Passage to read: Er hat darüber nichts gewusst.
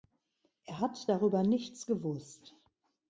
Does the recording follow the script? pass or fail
pass